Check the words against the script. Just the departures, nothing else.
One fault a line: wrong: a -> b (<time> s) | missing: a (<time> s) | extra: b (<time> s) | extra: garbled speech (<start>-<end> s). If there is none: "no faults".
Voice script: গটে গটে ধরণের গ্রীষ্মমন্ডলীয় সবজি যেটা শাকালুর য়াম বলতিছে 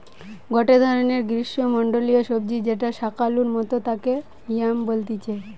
missing: গটে (0.8 s)
extra: মতো তাকে (3.6 s)